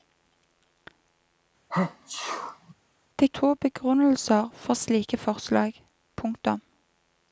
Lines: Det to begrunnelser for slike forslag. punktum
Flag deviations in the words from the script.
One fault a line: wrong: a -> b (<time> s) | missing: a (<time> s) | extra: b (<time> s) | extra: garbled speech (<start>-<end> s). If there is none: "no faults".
no faults